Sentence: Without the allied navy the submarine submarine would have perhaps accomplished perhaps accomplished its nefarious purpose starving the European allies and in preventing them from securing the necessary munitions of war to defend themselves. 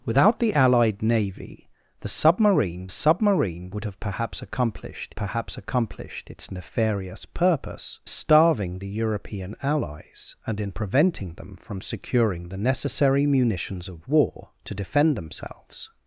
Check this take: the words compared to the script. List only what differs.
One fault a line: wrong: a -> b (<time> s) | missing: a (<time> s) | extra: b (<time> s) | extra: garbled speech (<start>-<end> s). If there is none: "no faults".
no faults